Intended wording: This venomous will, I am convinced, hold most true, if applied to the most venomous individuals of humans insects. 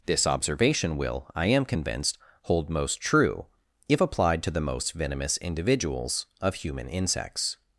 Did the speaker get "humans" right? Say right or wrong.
wrong